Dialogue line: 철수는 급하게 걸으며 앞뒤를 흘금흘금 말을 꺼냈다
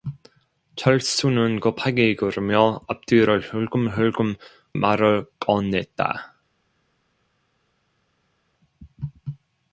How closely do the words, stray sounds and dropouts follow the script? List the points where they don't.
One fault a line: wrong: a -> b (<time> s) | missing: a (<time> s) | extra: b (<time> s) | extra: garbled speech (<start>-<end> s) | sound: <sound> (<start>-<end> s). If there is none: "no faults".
no faults